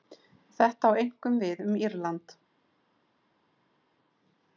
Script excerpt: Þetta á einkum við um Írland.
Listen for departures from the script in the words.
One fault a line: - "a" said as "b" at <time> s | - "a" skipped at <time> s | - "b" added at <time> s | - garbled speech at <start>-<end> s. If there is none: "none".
none